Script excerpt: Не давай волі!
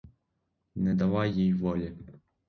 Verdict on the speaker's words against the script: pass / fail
fail